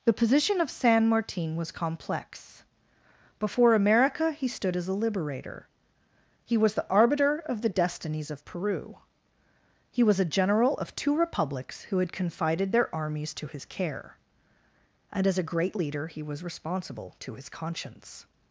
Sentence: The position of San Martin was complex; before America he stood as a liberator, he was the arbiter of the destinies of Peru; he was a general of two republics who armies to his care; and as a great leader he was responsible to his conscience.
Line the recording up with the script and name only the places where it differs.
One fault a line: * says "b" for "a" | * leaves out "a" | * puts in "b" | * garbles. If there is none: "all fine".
* puts in "had confided their"